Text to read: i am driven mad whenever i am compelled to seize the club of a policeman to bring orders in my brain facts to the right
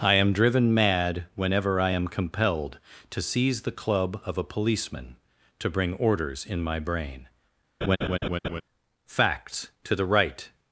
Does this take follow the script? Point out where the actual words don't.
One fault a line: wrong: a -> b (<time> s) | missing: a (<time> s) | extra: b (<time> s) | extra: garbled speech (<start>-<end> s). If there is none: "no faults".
no faults